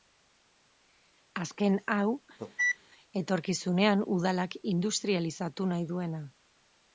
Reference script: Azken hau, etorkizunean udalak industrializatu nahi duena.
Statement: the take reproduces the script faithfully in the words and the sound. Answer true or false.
false